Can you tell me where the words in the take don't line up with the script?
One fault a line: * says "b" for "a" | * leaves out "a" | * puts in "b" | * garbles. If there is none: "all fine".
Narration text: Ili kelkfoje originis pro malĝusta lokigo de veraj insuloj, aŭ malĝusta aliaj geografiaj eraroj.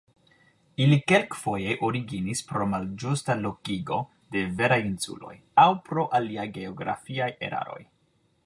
* says "pro" for "malĝusta"